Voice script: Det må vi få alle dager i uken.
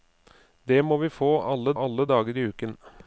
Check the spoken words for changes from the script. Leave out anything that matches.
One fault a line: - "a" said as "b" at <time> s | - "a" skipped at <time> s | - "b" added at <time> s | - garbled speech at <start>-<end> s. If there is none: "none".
- "alle" added at 1.8 s